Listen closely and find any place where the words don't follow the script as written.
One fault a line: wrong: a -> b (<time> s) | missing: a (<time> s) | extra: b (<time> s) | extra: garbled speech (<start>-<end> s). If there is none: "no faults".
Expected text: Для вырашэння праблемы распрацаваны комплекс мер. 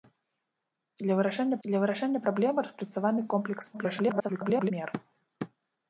extra: для вырашэння (1.7 s)
extra: garbled speech (3.7-4.7 s)